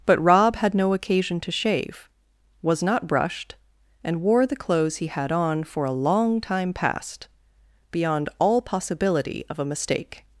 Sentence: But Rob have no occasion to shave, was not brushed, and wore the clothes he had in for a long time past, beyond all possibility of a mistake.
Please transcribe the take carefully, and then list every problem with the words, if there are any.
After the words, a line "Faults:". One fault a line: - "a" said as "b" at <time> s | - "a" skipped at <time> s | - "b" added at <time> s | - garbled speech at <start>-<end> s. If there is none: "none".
But Rob had no occasion to shave, was not brushed, and wore the clothes he had on for a long time past, beyond all possibility of a mistake.
Faults:
- "have" said as "had" at 0.6 s
- "in" said as "on" at 5.3 s